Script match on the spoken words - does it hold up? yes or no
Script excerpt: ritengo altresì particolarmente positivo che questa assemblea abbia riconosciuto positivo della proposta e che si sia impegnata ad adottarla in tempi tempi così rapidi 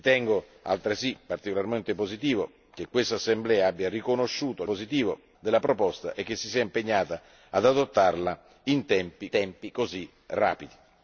yes